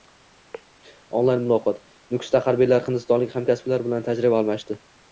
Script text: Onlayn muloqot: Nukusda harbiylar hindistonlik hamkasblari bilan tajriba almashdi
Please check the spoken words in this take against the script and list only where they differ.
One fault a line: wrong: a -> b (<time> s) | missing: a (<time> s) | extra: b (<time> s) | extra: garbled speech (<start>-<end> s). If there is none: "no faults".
no faults